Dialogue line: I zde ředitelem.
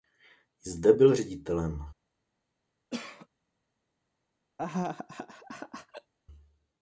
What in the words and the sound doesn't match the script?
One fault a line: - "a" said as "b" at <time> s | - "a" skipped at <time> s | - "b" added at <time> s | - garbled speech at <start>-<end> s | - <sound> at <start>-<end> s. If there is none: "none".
- "byl" added at 0.9 s
- cough at 2.9-3.3 s
- laugh at 4.6-6.1 s